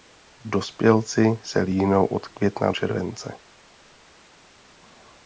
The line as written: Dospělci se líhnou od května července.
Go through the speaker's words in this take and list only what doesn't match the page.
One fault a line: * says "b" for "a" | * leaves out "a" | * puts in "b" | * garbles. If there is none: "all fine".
all fine